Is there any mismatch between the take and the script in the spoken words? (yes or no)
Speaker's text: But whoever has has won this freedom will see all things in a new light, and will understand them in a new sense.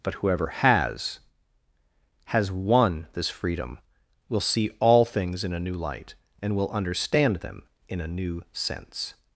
no